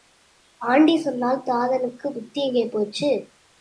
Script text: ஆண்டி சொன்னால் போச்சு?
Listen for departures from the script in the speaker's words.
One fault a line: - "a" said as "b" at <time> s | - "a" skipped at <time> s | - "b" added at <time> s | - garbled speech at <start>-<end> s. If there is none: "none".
- "தாதனுக்குப் புத்தி எங்கே" added at 1.4 s